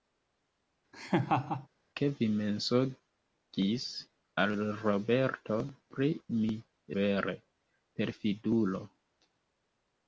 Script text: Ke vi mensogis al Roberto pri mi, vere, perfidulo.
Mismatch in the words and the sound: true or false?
true